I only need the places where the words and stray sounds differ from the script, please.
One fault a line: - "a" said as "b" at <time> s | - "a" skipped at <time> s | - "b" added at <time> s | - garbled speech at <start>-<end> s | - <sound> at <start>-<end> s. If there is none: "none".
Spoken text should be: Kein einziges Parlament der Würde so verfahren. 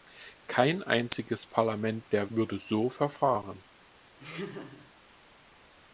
- laugh at 4.2-4.9 s